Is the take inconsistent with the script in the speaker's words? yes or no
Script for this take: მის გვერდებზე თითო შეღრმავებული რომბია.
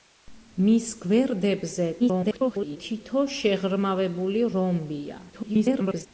yes